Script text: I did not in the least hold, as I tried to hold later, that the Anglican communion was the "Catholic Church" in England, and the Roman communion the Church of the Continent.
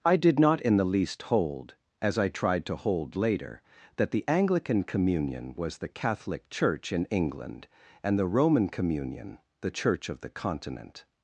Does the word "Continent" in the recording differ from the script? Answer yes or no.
no